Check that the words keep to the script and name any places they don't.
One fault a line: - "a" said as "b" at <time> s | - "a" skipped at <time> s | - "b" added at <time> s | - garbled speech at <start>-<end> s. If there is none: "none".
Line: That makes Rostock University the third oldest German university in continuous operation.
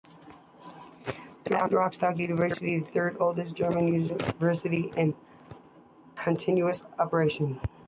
- "makes" skipped at 1.7 s